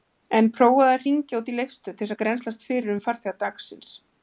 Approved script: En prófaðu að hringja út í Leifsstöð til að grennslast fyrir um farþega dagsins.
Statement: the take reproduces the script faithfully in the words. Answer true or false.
true